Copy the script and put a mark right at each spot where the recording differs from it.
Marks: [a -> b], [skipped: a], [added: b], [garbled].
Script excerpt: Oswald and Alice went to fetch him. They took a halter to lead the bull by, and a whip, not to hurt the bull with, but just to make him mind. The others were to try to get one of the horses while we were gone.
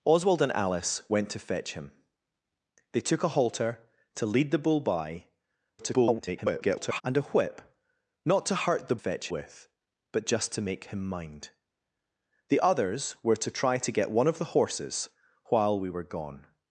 Oswald and Alice went to fetch him. They took a halter to lead the bull by, [garbled] and a whip, not to hurt the [bull -> fetch] with, but just to make him mind. The others were to try to get one of the horses while we were gone.